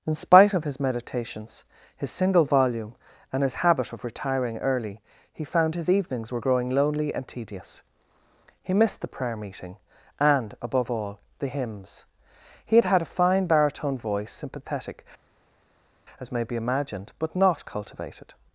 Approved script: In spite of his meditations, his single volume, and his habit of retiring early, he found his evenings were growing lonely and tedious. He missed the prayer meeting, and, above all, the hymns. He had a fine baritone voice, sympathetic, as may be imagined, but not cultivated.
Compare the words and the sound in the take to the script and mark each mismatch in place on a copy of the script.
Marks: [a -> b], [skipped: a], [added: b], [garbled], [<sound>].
In spite of his meditations, his single volume, and his habit of retiring early, he found his evenings were growing lonely and tedious. He missed the prayer meeting, and, above all, the hymns. He had [added: had] a fine baritone voice, sympathetic, as may be imagined, but not cultivated.